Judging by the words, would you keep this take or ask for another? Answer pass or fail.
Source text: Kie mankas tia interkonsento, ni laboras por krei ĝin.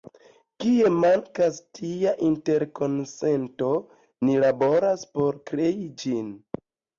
pass